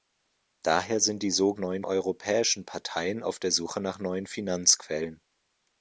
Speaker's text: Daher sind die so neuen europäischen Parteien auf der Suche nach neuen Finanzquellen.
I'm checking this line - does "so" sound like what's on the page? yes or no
yes